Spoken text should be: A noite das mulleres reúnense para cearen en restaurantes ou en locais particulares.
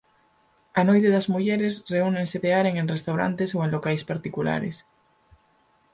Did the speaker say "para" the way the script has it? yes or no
no